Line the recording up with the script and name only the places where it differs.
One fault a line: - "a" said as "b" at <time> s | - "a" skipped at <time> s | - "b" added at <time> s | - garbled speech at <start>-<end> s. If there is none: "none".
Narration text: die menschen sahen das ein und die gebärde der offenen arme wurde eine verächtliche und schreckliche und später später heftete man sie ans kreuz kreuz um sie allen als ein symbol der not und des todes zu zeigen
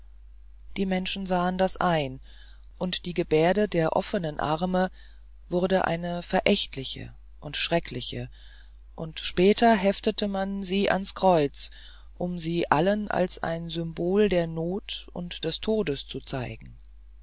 - "später" skipped at 9.7 s
- "kreuz" skipped at 11.7 s